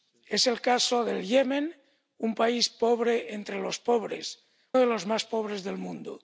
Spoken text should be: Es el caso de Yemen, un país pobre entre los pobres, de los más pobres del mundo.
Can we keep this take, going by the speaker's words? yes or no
yes